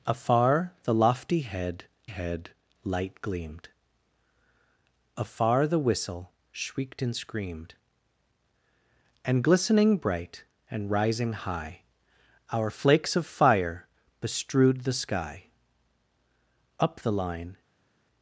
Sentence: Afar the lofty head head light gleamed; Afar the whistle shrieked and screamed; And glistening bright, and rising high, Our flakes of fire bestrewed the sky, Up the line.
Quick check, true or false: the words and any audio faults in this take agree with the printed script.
true